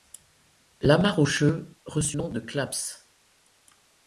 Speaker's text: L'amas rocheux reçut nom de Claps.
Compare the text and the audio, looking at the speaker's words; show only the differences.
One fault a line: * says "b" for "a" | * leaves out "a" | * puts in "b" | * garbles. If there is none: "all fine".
all fine